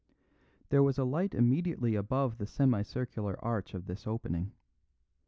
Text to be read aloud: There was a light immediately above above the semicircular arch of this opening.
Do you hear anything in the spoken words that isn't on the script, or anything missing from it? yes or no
yes